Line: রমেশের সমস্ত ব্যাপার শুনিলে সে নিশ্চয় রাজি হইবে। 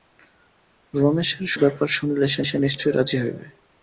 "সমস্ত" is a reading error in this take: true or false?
true